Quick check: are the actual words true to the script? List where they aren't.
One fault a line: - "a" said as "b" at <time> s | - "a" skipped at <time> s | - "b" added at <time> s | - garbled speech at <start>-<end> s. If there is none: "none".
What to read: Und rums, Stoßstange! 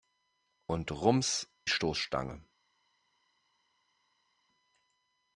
none